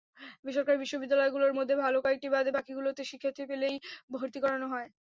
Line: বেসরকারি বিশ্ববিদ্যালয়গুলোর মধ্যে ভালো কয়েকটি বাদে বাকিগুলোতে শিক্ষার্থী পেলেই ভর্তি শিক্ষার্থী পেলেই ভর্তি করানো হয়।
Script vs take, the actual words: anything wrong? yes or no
yes